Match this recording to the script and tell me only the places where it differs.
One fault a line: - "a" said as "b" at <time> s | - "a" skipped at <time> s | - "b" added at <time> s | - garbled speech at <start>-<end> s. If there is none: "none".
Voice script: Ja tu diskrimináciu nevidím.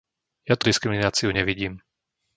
none